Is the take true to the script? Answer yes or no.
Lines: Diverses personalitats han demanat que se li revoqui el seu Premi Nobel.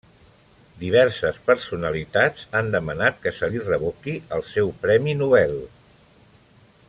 yes